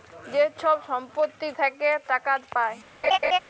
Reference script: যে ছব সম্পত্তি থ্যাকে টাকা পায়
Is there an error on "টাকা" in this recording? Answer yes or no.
no